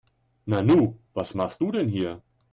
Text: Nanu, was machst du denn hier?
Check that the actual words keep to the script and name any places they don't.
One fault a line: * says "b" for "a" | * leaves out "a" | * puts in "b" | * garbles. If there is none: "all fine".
all fine